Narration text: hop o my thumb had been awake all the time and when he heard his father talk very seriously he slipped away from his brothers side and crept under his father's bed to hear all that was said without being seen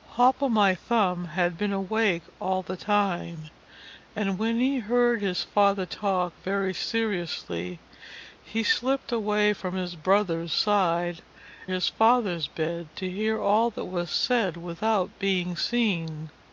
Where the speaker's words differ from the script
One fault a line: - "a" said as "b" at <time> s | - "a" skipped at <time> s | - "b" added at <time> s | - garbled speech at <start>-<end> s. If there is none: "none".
- "and crept under" skipped at 11.2 s